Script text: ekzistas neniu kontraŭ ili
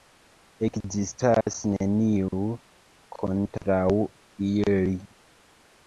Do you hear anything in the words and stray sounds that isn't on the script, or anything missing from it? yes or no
yes